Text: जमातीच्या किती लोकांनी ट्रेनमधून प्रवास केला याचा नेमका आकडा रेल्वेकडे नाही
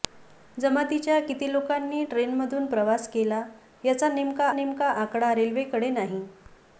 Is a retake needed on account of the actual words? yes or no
yes